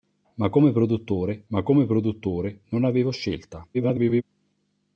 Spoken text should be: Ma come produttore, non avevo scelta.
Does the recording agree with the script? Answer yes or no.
no